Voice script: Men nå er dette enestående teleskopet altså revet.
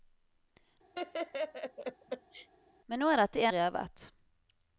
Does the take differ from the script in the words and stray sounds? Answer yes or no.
yes